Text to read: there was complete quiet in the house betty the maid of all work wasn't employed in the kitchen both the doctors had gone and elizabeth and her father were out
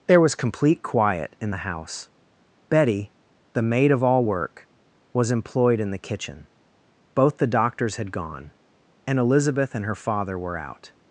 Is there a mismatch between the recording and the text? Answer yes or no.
yes